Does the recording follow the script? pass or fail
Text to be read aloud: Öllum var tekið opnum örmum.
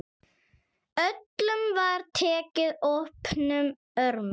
pass